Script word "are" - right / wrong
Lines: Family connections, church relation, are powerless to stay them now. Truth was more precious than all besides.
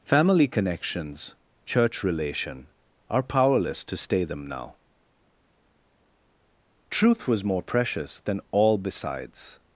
right